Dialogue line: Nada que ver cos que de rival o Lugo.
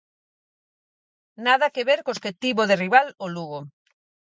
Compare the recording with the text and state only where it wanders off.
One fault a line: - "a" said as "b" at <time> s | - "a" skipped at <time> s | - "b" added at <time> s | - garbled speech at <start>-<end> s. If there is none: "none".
- "tivo" added at 2.4 s